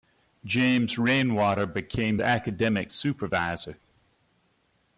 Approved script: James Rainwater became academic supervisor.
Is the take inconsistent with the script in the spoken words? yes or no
no